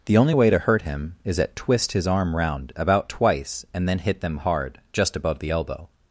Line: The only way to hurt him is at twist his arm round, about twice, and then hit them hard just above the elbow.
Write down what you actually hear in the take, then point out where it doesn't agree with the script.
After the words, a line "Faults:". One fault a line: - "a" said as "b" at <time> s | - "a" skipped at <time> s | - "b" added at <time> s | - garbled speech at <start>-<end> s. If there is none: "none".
The only way to hurt him is at twist his arm round, about twice, and then hit them hard just above the elbow.
Faults:
none